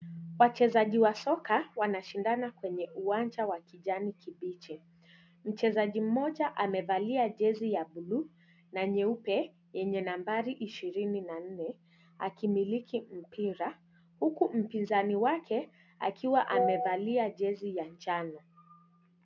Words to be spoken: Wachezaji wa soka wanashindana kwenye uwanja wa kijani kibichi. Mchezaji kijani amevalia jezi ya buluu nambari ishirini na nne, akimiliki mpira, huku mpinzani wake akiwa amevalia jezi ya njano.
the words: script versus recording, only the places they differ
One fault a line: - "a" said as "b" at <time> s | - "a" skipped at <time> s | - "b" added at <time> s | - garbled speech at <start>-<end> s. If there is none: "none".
- "kijani" said as "mmoja" at 6.0 s
- "na nyeupe yenye" added at 8.7 s